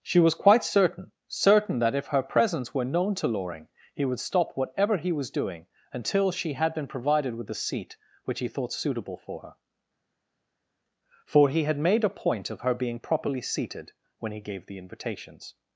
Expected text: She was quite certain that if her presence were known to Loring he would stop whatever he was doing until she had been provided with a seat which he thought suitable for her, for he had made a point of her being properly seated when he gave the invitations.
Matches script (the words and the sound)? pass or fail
fail